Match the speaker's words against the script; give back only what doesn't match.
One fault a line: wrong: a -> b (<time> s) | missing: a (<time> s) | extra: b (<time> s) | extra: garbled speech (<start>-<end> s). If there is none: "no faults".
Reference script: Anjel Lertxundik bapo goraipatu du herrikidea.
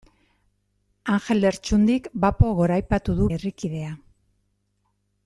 no faults